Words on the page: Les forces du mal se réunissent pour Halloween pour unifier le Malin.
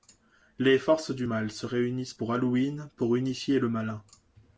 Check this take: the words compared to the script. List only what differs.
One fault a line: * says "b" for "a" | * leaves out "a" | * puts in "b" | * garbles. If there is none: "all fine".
all fine